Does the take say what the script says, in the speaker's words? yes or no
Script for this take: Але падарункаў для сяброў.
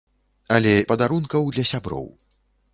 yes